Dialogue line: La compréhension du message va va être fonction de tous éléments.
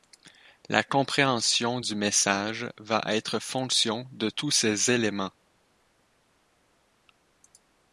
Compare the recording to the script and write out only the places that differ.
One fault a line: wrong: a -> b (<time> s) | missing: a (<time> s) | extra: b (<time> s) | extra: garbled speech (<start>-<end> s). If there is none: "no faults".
missing: va (3.0 s)
extra: ces (4.5 s)